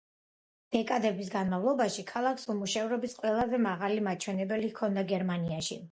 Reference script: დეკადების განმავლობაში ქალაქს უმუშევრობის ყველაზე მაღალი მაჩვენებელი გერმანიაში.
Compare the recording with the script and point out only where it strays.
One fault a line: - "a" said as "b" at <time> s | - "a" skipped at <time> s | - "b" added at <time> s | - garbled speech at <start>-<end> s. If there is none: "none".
- "ჰქონდა" added at 4.7 s